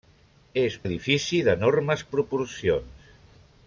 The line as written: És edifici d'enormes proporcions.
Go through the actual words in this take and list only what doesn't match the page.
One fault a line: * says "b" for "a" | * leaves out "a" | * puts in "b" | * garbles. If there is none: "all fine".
all fine